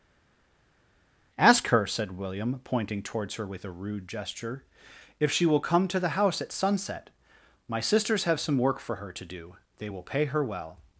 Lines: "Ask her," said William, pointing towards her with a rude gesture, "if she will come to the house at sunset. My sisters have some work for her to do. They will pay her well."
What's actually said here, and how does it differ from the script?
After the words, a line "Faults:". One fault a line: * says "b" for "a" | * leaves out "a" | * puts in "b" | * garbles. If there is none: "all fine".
"Ask her," said William, pointing towards her with a rude gesture, "if she will come to the house at sunset. My sisters have some work for her to do. They will pay her well."
Faults:
all fine